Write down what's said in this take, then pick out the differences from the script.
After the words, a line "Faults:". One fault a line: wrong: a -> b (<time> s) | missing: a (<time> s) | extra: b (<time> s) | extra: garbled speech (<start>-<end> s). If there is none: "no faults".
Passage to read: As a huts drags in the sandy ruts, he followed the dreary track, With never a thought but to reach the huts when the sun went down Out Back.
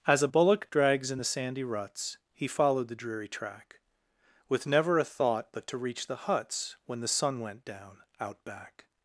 As a bullock drags in the sandy ruts, he followed the dreary track, With never a thought but to reach the huts when the sun went down Out Back.
Faults:
wrong: huts -> bullock (0.2 s)